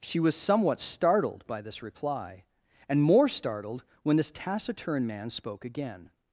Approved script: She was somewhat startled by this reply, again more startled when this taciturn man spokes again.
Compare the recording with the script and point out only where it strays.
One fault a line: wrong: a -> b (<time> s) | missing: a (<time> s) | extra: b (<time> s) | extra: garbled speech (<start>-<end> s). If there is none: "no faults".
wrong: again -> and (2.9 s)
wrong: spokes -> spoke (5.3 s)